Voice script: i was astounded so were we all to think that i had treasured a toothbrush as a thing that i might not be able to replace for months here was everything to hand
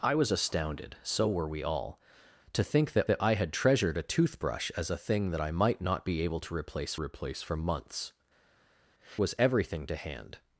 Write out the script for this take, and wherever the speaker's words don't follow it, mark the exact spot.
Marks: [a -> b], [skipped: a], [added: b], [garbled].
i was astounded so were we all to think that [added: that] i had treasured a toothbrush as a thing that i might not be able to replace [added: replace] for months [skipped: here] was everything to hand